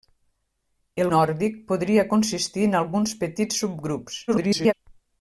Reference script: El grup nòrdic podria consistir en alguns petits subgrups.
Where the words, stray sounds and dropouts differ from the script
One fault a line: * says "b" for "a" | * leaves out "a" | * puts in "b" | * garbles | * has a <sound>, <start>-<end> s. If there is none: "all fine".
* leaves out "grup"
* garbles